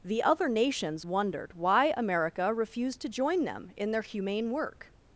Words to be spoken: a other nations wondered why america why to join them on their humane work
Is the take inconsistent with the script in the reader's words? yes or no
yes